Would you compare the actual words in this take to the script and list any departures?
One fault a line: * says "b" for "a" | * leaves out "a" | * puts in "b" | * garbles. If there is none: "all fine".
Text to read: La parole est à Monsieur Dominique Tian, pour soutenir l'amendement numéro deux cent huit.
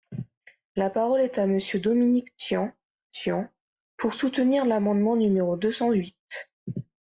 * puts in "Tian"